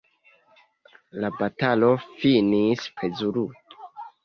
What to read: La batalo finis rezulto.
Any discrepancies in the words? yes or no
no